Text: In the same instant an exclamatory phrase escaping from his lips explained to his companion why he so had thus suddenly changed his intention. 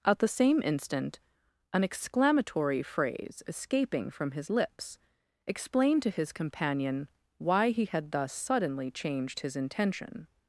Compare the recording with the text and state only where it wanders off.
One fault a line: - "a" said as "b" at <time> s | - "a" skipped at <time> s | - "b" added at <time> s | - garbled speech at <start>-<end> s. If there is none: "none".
- "In" said as "At" at 0.0 s
- "so" skipped at 7.9 s